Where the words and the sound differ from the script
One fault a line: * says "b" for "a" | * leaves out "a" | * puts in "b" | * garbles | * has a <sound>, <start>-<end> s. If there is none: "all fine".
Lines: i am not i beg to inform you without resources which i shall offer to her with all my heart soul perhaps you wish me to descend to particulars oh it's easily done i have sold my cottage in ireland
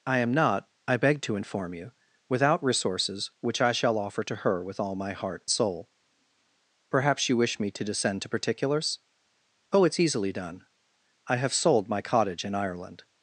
all fine